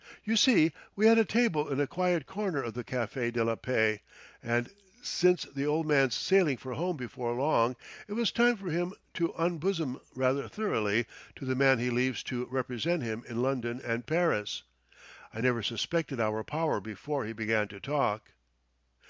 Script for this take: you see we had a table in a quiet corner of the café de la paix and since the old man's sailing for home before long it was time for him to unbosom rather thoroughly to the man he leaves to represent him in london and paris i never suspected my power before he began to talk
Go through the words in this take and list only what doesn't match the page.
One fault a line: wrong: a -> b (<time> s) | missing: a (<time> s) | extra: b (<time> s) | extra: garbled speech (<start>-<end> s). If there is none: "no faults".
wrong: my -> our (16.2 s)